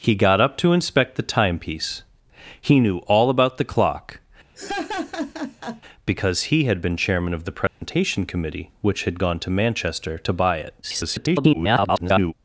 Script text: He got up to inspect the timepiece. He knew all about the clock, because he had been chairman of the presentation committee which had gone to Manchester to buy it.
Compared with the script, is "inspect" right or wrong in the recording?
right